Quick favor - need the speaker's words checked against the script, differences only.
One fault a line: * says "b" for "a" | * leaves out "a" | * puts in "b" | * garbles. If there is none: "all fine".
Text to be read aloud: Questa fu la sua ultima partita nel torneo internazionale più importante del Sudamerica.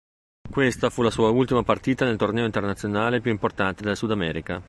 all fine